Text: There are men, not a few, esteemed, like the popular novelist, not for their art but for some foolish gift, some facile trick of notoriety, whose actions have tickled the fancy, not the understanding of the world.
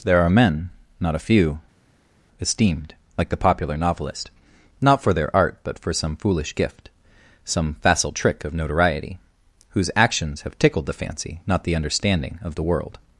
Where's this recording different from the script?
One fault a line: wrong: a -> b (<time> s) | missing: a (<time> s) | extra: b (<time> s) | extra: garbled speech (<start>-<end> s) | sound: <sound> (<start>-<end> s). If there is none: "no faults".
no faults